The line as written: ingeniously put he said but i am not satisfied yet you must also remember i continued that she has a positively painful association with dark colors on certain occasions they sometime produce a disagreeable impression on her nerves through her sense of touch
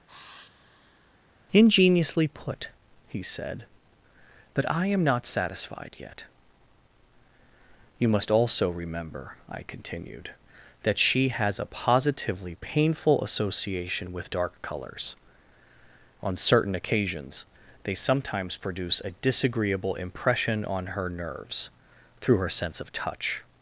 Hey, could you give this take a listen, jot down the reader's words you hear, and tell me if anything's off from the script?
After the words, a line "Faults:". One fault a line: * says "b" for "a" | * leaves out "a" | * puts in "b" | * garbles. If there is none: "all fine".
ingeniously put he said but i am not satisfied yet you must also remember i continued that she has a positively painful association with dark colors on certain occasions they sometimes produce a disagreeable impression on her nerves through her sense of touch
Faults:
* says "sometimes" for "sometime"